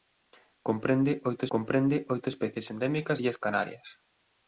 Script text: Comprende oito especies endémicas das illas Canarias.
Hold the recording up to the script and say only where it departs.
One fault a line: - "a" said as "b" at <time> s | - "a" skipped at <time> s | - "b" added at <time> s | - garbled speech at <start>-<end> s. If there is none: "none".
- "comprende oito" added at 1.5 s
- "das" skipped at 3.2 s